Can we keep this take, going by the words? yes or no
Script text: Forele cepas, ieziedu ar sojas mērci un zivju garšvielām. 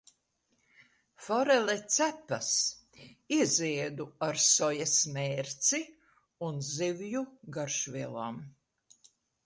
yes